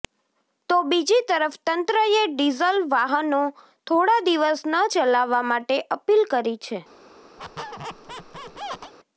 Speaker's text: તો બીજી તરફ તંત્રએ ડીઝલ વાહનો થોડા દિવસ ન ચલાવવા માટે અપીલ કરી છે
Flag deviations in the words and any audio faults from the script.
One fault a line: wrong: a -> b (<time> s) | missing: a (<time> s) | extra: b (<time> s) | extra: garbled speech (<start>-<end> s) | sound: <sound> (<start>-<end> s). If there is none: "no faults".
sound: squeak (7.4-8.9 s)